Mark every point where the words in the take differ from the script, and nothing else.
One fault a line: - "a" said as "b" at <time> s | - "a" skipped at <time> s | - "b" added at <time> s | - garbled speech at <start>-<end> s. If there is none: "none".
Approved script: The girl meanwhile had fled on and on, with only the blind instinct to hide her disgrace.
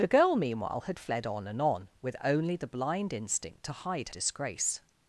- "her" skipped at 4.1 s